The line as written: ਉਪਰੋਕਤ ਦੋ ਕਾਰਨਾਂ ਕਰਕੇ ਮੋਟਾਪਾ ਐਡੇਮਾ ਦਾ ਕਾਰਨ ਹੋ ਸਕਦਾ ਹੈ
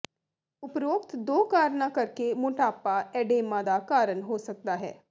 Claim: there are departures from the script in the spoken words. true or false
false